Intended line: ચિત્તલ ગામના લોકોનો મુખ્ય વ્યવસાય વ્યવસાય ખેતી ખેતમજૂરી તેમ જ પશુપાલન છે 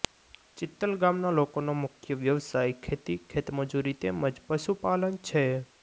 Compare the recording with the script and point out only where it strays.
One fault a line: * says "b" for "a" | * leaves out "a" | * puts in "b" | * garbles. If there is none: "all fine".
* leaves out "વ્યવસાય"